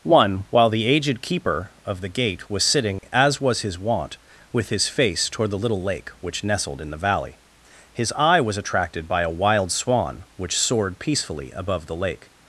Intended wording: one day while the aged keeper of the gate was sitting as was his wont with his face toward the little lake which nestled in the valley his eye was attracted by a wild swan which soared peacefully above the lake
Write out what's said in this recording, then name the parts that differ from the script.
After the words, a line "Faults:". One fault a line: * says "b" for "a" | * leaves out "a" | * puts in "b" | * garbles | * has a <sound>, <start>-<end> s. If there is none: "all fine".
one while the aged keeper of the gate was sitting as was his wont with his face toward the little lake which nestled in the valley his eye was attracted by a wild swan which soared peacefully above the lake
Faults:
* leaves out "day"
* has a dropout, 3.0-3.0 s